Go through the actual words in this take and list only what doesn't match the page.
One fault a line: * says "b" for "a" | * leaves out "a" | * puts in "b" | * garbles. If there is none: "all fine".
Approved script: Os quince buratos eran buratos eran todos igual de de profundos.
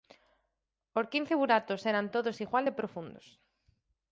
* leaves out "buratos eran"
* leaves out "de"